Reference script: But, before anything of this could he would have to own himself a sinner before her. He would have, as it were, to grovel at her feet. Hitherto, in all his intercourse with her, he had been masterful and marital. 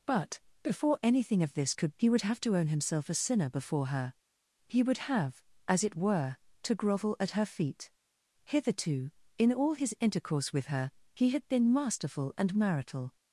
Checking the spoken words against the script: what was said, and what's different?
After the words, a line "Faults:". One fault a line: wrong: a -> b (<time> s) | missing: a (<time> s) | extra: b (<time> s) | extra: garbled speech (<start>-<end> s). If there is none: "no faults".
But, before anything of this could he would have to own himself a sinner before her. He would have, as it were, to grovel at her feet. Hitherto, in all his intercourse with her, he had been masterful and marital.
Faults:
no faults